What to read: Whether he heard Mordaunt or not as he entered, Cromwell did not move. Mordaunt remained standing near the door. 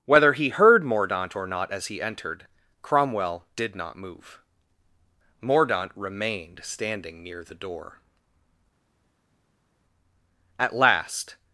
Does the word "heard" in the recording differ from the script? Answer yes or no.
no